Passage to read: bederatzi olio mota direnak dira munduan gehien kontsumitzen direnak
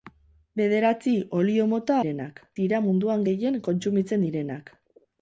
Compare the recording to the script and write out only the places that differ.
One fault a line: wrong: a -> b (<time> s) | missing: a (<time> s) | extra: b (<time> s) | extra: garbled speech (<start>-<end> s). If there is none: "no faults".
no faults